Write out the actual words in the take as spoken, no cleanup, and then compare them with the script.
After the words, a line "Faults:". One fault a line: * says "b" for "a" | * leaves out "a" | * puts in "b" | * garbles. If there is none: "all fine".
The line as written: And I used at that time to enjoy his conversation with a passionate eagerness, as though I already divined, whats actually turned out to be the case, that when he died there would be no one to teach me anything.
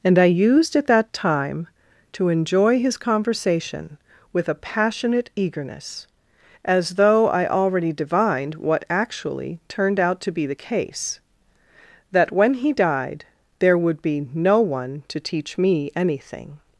And I used at that time to enjoy his conversation with a passionate eagerness, as though I already divined, what actually turned out to be the case, that when he died there would be no one to teach me anything.
Faults:
* says "what" for "whats"